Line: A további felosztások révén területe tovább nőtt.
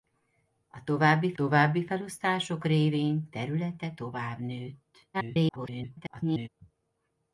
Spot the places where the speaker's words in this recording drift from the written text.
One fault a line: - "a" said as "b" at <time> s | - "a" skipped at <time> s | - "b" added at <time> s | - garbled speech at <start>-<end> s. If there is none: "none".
- "további" added at 1.3 s
- garbled speech at 5.1-6.5 s